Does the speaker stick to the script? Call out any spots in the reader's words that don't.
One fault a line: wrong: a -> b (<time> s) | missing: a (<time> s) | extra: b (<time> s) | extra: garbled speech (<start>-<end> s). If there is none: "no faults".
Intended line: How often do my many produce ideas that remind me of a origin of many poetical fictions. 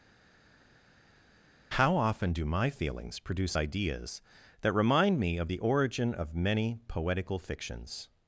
wrong: many -> feelings (2.7 s)
wrong: a -> the (5.5 s)